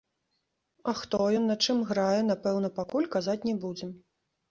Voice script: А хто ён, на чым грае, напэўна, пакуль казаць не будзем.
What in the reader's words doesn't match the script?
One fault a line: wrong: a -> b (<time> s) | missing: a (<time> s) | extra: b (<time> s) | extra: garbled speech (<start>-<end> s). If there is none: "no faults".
no faults